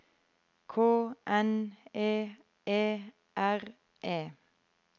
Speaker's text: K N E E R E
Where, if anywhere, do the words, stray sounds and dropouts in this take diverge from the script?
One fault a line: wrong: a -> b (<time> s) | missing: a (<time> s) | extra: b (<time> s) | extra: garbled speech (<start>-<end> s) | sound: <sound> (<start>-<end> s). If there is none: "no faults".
no faults